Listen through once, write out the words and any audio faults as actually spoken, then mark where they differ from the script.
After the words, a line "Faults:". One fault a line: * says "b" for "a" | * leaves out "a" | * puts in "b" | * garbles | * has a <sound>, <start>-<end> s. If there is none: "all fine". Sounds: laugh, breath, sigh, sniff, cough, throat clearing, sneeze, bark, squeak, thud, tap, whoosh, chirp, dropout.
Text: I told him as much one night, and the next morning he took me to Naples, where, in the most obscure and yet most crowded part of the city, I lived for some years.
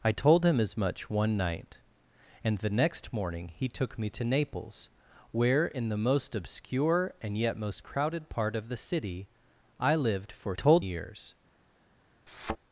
I told him as much one night, and the next morning he took me to Naples, where, in the most obscure and yet most crowded part of the city, I lived for told years.
Faults:
* says "told" for "some"
* has a thud, 12.3-12.6 s